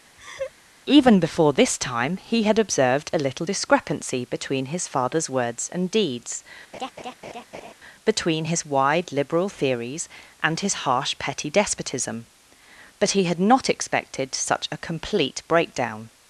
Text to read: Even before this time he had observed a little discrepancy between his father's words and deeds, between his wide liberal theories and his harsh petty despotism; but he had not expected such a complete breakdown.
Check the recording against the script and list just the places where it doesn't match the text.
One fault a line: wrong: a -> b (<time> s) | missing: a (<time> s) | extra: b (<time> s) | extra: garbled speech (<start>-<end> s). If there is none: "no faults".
no faults